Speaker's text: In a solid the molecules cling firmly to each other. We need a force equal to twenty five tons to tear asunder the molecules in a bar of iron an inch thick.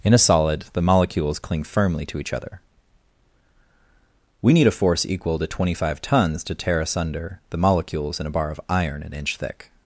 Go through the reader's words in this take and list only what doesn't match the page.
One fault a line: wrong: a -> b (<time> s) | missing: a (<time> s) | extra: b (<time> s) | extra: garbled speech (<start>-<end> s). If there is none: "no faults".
no faults